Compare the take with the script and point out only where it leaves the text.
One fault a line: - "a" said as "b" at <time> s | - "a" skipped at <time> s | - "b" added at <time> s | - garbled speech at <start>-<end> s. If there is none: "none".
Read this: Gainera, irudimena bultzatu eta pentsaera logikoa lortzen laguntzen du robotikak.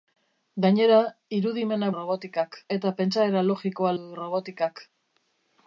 - "bultzatu" said as "robotikak" at 2.0 s
- "lortzen laguntzen" skipped at 3.9 s